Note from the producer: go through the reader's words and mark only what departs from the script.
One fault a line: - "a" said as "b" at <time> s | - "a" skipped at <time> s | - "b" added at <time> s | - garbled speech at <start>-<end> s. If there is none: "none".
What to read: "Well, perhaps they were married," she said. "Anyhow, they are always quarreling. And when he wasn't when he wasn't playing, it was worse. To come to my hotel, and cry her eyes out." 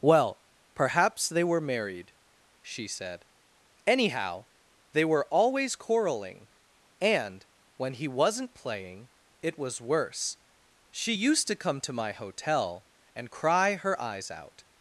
- "are" said as "were" at 5.0 s
- "when he wasn't" skipped at 8.6 s
- "She used" added at 10.9 s